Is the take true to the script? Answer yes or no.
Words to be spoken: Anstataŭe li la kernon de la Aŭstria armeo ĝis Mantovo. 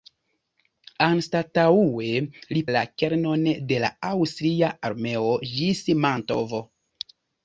yes